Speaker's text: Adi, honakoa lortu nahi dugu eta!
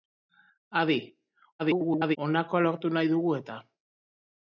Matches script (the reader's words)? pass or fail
fail